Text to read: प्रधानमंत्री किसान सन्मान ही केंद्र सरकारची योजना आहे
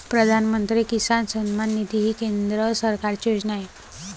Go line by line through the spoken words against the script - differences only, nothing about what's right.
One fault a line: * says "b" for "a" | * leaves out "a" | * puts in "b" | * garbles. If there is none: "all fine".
* puts in "निधी"